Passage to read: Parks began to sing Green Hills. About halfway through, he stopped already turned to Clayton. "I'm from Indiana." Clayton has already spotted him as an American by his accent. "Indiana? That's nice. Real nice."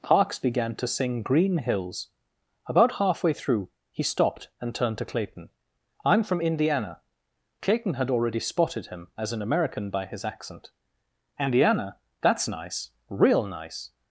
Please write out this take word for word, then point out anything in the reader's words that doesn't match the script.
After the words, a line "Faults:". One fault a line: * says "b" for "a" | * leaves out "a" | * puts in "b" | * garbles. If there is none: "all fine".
Parks began to sing Green Hills. About halfway through, he stopped and turned to Clayton. "I'm from Indiana." Clayton had already spotted him as an American by his accent. "Indiana? That's nice. Real nice."
Faults:
* says "and" for "already"
* says "had" for "has"